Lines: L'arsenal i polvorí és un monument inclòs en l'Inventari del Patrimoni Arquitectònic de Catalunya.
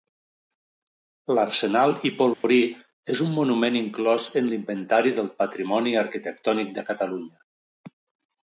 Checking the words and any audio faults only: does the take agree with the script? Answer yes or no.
no